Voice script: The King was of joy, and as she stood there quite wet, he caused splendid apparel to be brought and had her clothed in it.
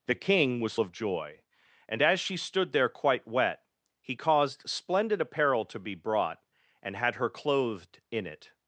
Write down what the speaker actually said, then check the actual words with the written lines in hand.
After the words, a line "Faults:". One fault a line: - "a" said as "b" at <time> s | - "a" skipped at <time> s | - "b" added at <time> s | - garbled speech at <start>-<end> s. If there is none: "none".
The King was of joy, and as she stood there quite wet, he caused splendid apparel to be brought and had her clothed in it.
Faults:
none